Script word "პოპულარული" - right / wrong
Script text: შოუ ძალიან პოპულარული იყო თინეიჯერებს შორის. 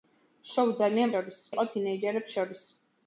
wrong